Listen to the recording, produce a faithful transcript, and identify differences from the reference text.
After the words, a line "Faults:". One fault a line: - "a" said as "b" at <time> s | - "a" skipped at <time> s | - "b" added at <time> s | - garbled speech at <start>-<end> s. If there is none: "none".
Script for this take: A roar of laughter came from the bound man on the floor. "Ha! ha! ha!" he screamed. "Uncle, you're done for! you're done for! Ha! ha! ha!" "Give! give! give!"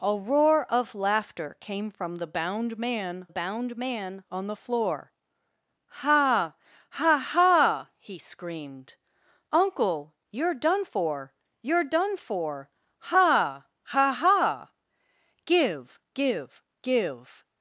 A roar of laughter came from the bound man bound man on the floor. "Ha! ha! ha!" he screamed. "Uncle, you're done for! you're done for! Ha! ha! ha!" "Give! give! give!"
Faults:
- "bound man" added at 3.3 s